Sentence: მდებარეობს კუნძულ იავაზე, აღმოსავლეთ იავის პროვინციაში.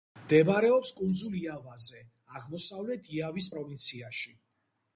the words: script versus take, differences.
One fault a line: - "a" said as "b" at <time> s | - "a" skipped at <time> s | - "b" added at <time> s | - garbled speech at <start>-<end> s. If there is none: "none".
none